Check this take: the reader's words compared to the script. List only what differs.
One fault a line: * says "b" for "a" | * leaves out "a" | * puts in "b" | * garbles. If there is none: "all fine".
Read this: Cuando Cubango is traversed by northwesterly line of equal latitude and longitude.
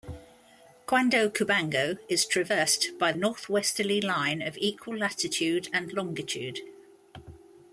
all fine